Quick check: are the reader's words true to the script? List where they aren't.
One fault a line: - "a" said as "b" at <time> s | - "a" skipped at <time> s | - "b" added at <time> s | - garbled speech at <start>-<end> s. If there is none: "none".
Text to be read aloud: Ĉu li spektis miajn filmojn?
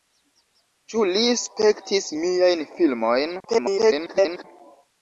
- garbled speech at 3.4-4.4 s